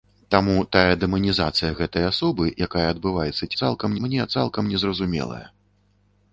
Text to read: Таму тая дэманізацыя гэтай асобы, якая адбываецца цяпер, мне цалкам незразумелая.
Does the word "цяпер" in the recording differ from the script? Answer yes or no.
yes